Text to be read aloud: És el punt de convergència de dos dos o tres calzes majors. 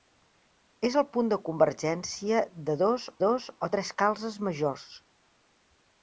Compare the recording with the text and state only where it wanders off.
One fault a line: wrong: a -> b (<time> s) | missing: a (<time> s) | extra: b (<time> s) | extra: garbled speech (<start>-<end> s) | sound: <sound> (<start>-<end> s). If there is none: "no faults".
no faults